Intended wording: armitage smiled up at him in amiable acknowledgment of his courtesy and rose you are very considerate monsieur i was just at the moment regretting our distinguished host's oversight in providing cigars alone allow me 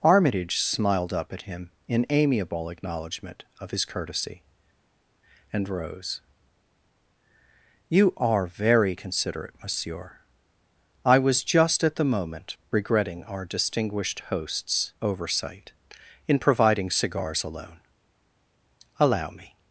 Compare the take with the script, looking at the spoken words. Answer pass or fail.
pass